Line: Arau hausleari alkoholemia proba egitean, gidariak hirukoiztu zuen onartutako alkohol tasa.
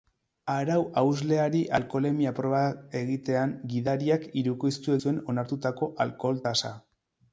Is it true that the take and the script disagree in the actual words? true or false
false